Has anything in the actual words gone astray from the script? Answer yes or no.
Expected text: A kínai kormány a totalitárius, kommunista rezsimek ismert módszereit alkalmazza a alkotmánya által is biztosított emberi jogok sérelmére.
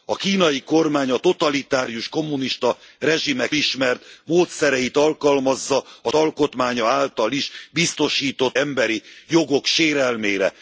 no